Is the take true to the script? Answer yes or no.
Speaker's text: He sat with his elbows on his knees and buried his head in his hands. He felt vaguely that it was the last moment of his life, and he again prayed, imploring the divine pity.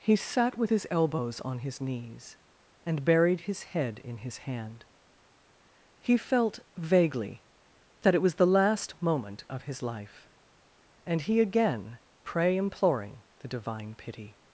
no